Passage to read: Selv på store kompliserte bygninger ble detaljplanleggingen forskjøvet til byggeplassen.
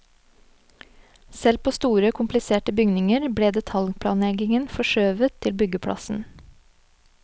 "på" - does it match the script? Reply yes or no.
yes